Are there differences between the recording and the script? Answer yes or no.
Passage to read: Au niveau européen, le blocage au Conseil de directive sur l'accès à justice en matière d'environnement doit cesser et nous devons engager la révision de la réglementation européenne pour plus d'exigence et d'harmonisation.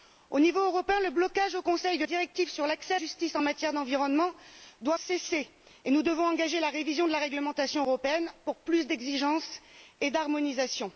no